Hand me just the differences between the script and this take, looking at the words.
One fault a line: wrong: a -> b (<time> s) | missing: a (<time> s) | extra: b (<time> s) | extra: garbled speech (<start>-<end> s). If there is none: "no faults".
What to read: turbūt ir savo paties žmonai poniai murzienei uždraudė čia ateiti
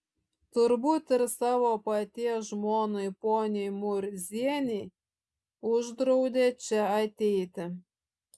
no faults